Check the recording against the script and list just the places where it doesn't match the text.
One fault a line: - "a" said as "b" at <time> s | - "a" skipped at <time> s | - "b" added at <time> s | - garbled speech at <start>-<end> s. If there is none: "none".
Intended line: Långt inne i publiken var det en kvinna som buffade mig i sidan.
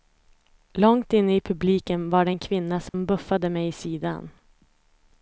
none